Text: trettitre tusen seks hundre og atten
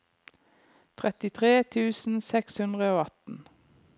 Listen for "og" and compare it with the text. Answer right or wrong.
right